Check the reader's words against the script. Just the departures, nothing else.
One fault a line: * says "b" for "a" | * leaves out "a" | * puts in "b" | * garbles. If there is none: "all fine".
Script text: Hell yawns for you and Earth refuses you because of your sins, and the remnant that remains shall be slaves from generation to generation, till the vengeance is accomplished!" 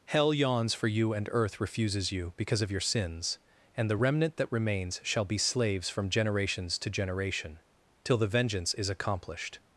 * says "generations" for "generation"